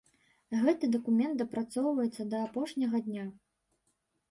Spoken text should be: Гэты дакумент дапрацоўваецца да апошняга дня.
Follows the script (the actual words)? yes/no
yes